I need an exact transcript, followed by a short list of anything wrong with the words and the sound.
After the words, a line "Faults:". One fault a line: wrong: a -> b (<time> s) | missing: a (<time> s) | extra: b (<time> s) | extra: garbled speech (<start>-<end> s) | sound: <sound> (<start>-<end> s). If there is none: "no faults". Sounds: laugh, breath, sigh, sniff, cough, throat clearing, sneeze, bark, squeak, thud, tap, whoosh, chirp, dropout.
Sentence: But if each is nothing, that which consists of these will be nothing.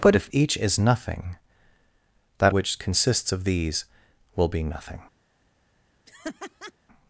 But if each is nothing, that which consists of these will be nothing.
Faults:
sound: laugh (6.1-6.7 s)